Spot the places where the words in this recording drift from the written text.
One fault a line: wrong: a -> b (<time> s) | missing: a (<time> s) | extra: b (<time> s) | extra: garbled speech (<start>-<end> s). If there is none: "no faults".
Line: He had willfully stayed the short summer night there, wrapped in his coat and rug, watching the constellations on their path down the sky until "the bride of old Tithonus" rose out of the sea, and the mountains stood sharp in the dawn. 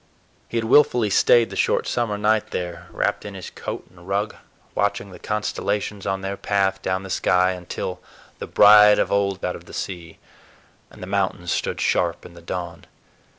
missing: Tithonus rose (9.4 s)